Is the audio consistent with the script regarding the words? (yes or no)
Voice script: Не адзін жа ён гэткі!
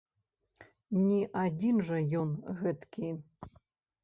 yes